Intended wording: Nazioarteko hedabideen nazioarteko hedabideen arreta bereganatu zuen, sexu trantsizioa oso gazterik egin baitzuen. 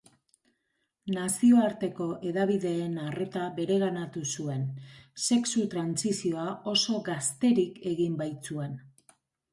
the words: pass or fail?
fail